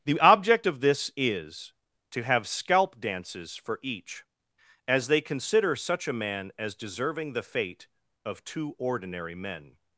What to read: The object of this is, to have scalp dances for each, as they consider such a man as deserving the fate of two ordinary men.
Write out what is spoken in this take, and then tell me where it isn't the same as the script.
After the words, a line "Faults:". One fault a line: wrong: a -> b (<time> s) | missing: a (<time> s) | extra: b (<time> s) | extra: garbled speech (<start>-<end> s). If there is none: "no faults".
The object of this is, to have scalp dances for each, as they consider such a man as deserving the fate of two ordinary men.
Faults:
no faults